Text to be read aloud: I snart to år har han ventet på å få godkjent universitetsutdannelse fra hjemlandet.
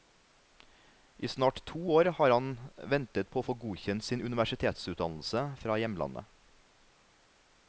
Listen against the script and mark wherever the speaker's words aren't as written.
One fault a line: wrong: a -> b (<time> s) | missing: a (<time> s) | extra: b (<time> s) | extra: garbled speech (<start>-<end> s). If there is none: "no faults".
extra: sin (4.1 s)